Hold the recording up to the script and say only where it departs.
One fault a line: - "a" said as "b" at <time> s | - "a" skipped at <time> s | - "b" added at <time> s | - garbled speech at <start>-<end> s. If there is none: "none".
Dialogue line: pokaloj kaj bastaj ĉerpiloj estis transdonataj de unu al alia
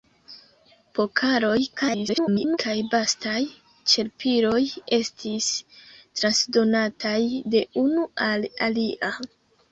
- garbled speech at 1.8-2.6 s